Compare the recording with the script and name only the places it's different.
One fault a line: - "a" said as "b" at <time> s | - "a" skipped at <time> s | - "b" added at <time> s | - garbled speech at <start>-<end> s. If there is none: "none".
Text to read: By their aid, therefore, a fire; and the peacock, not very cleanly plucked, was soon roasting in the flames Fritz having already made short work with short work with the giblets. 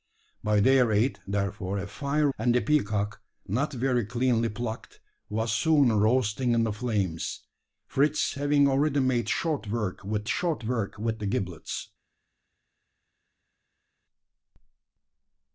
none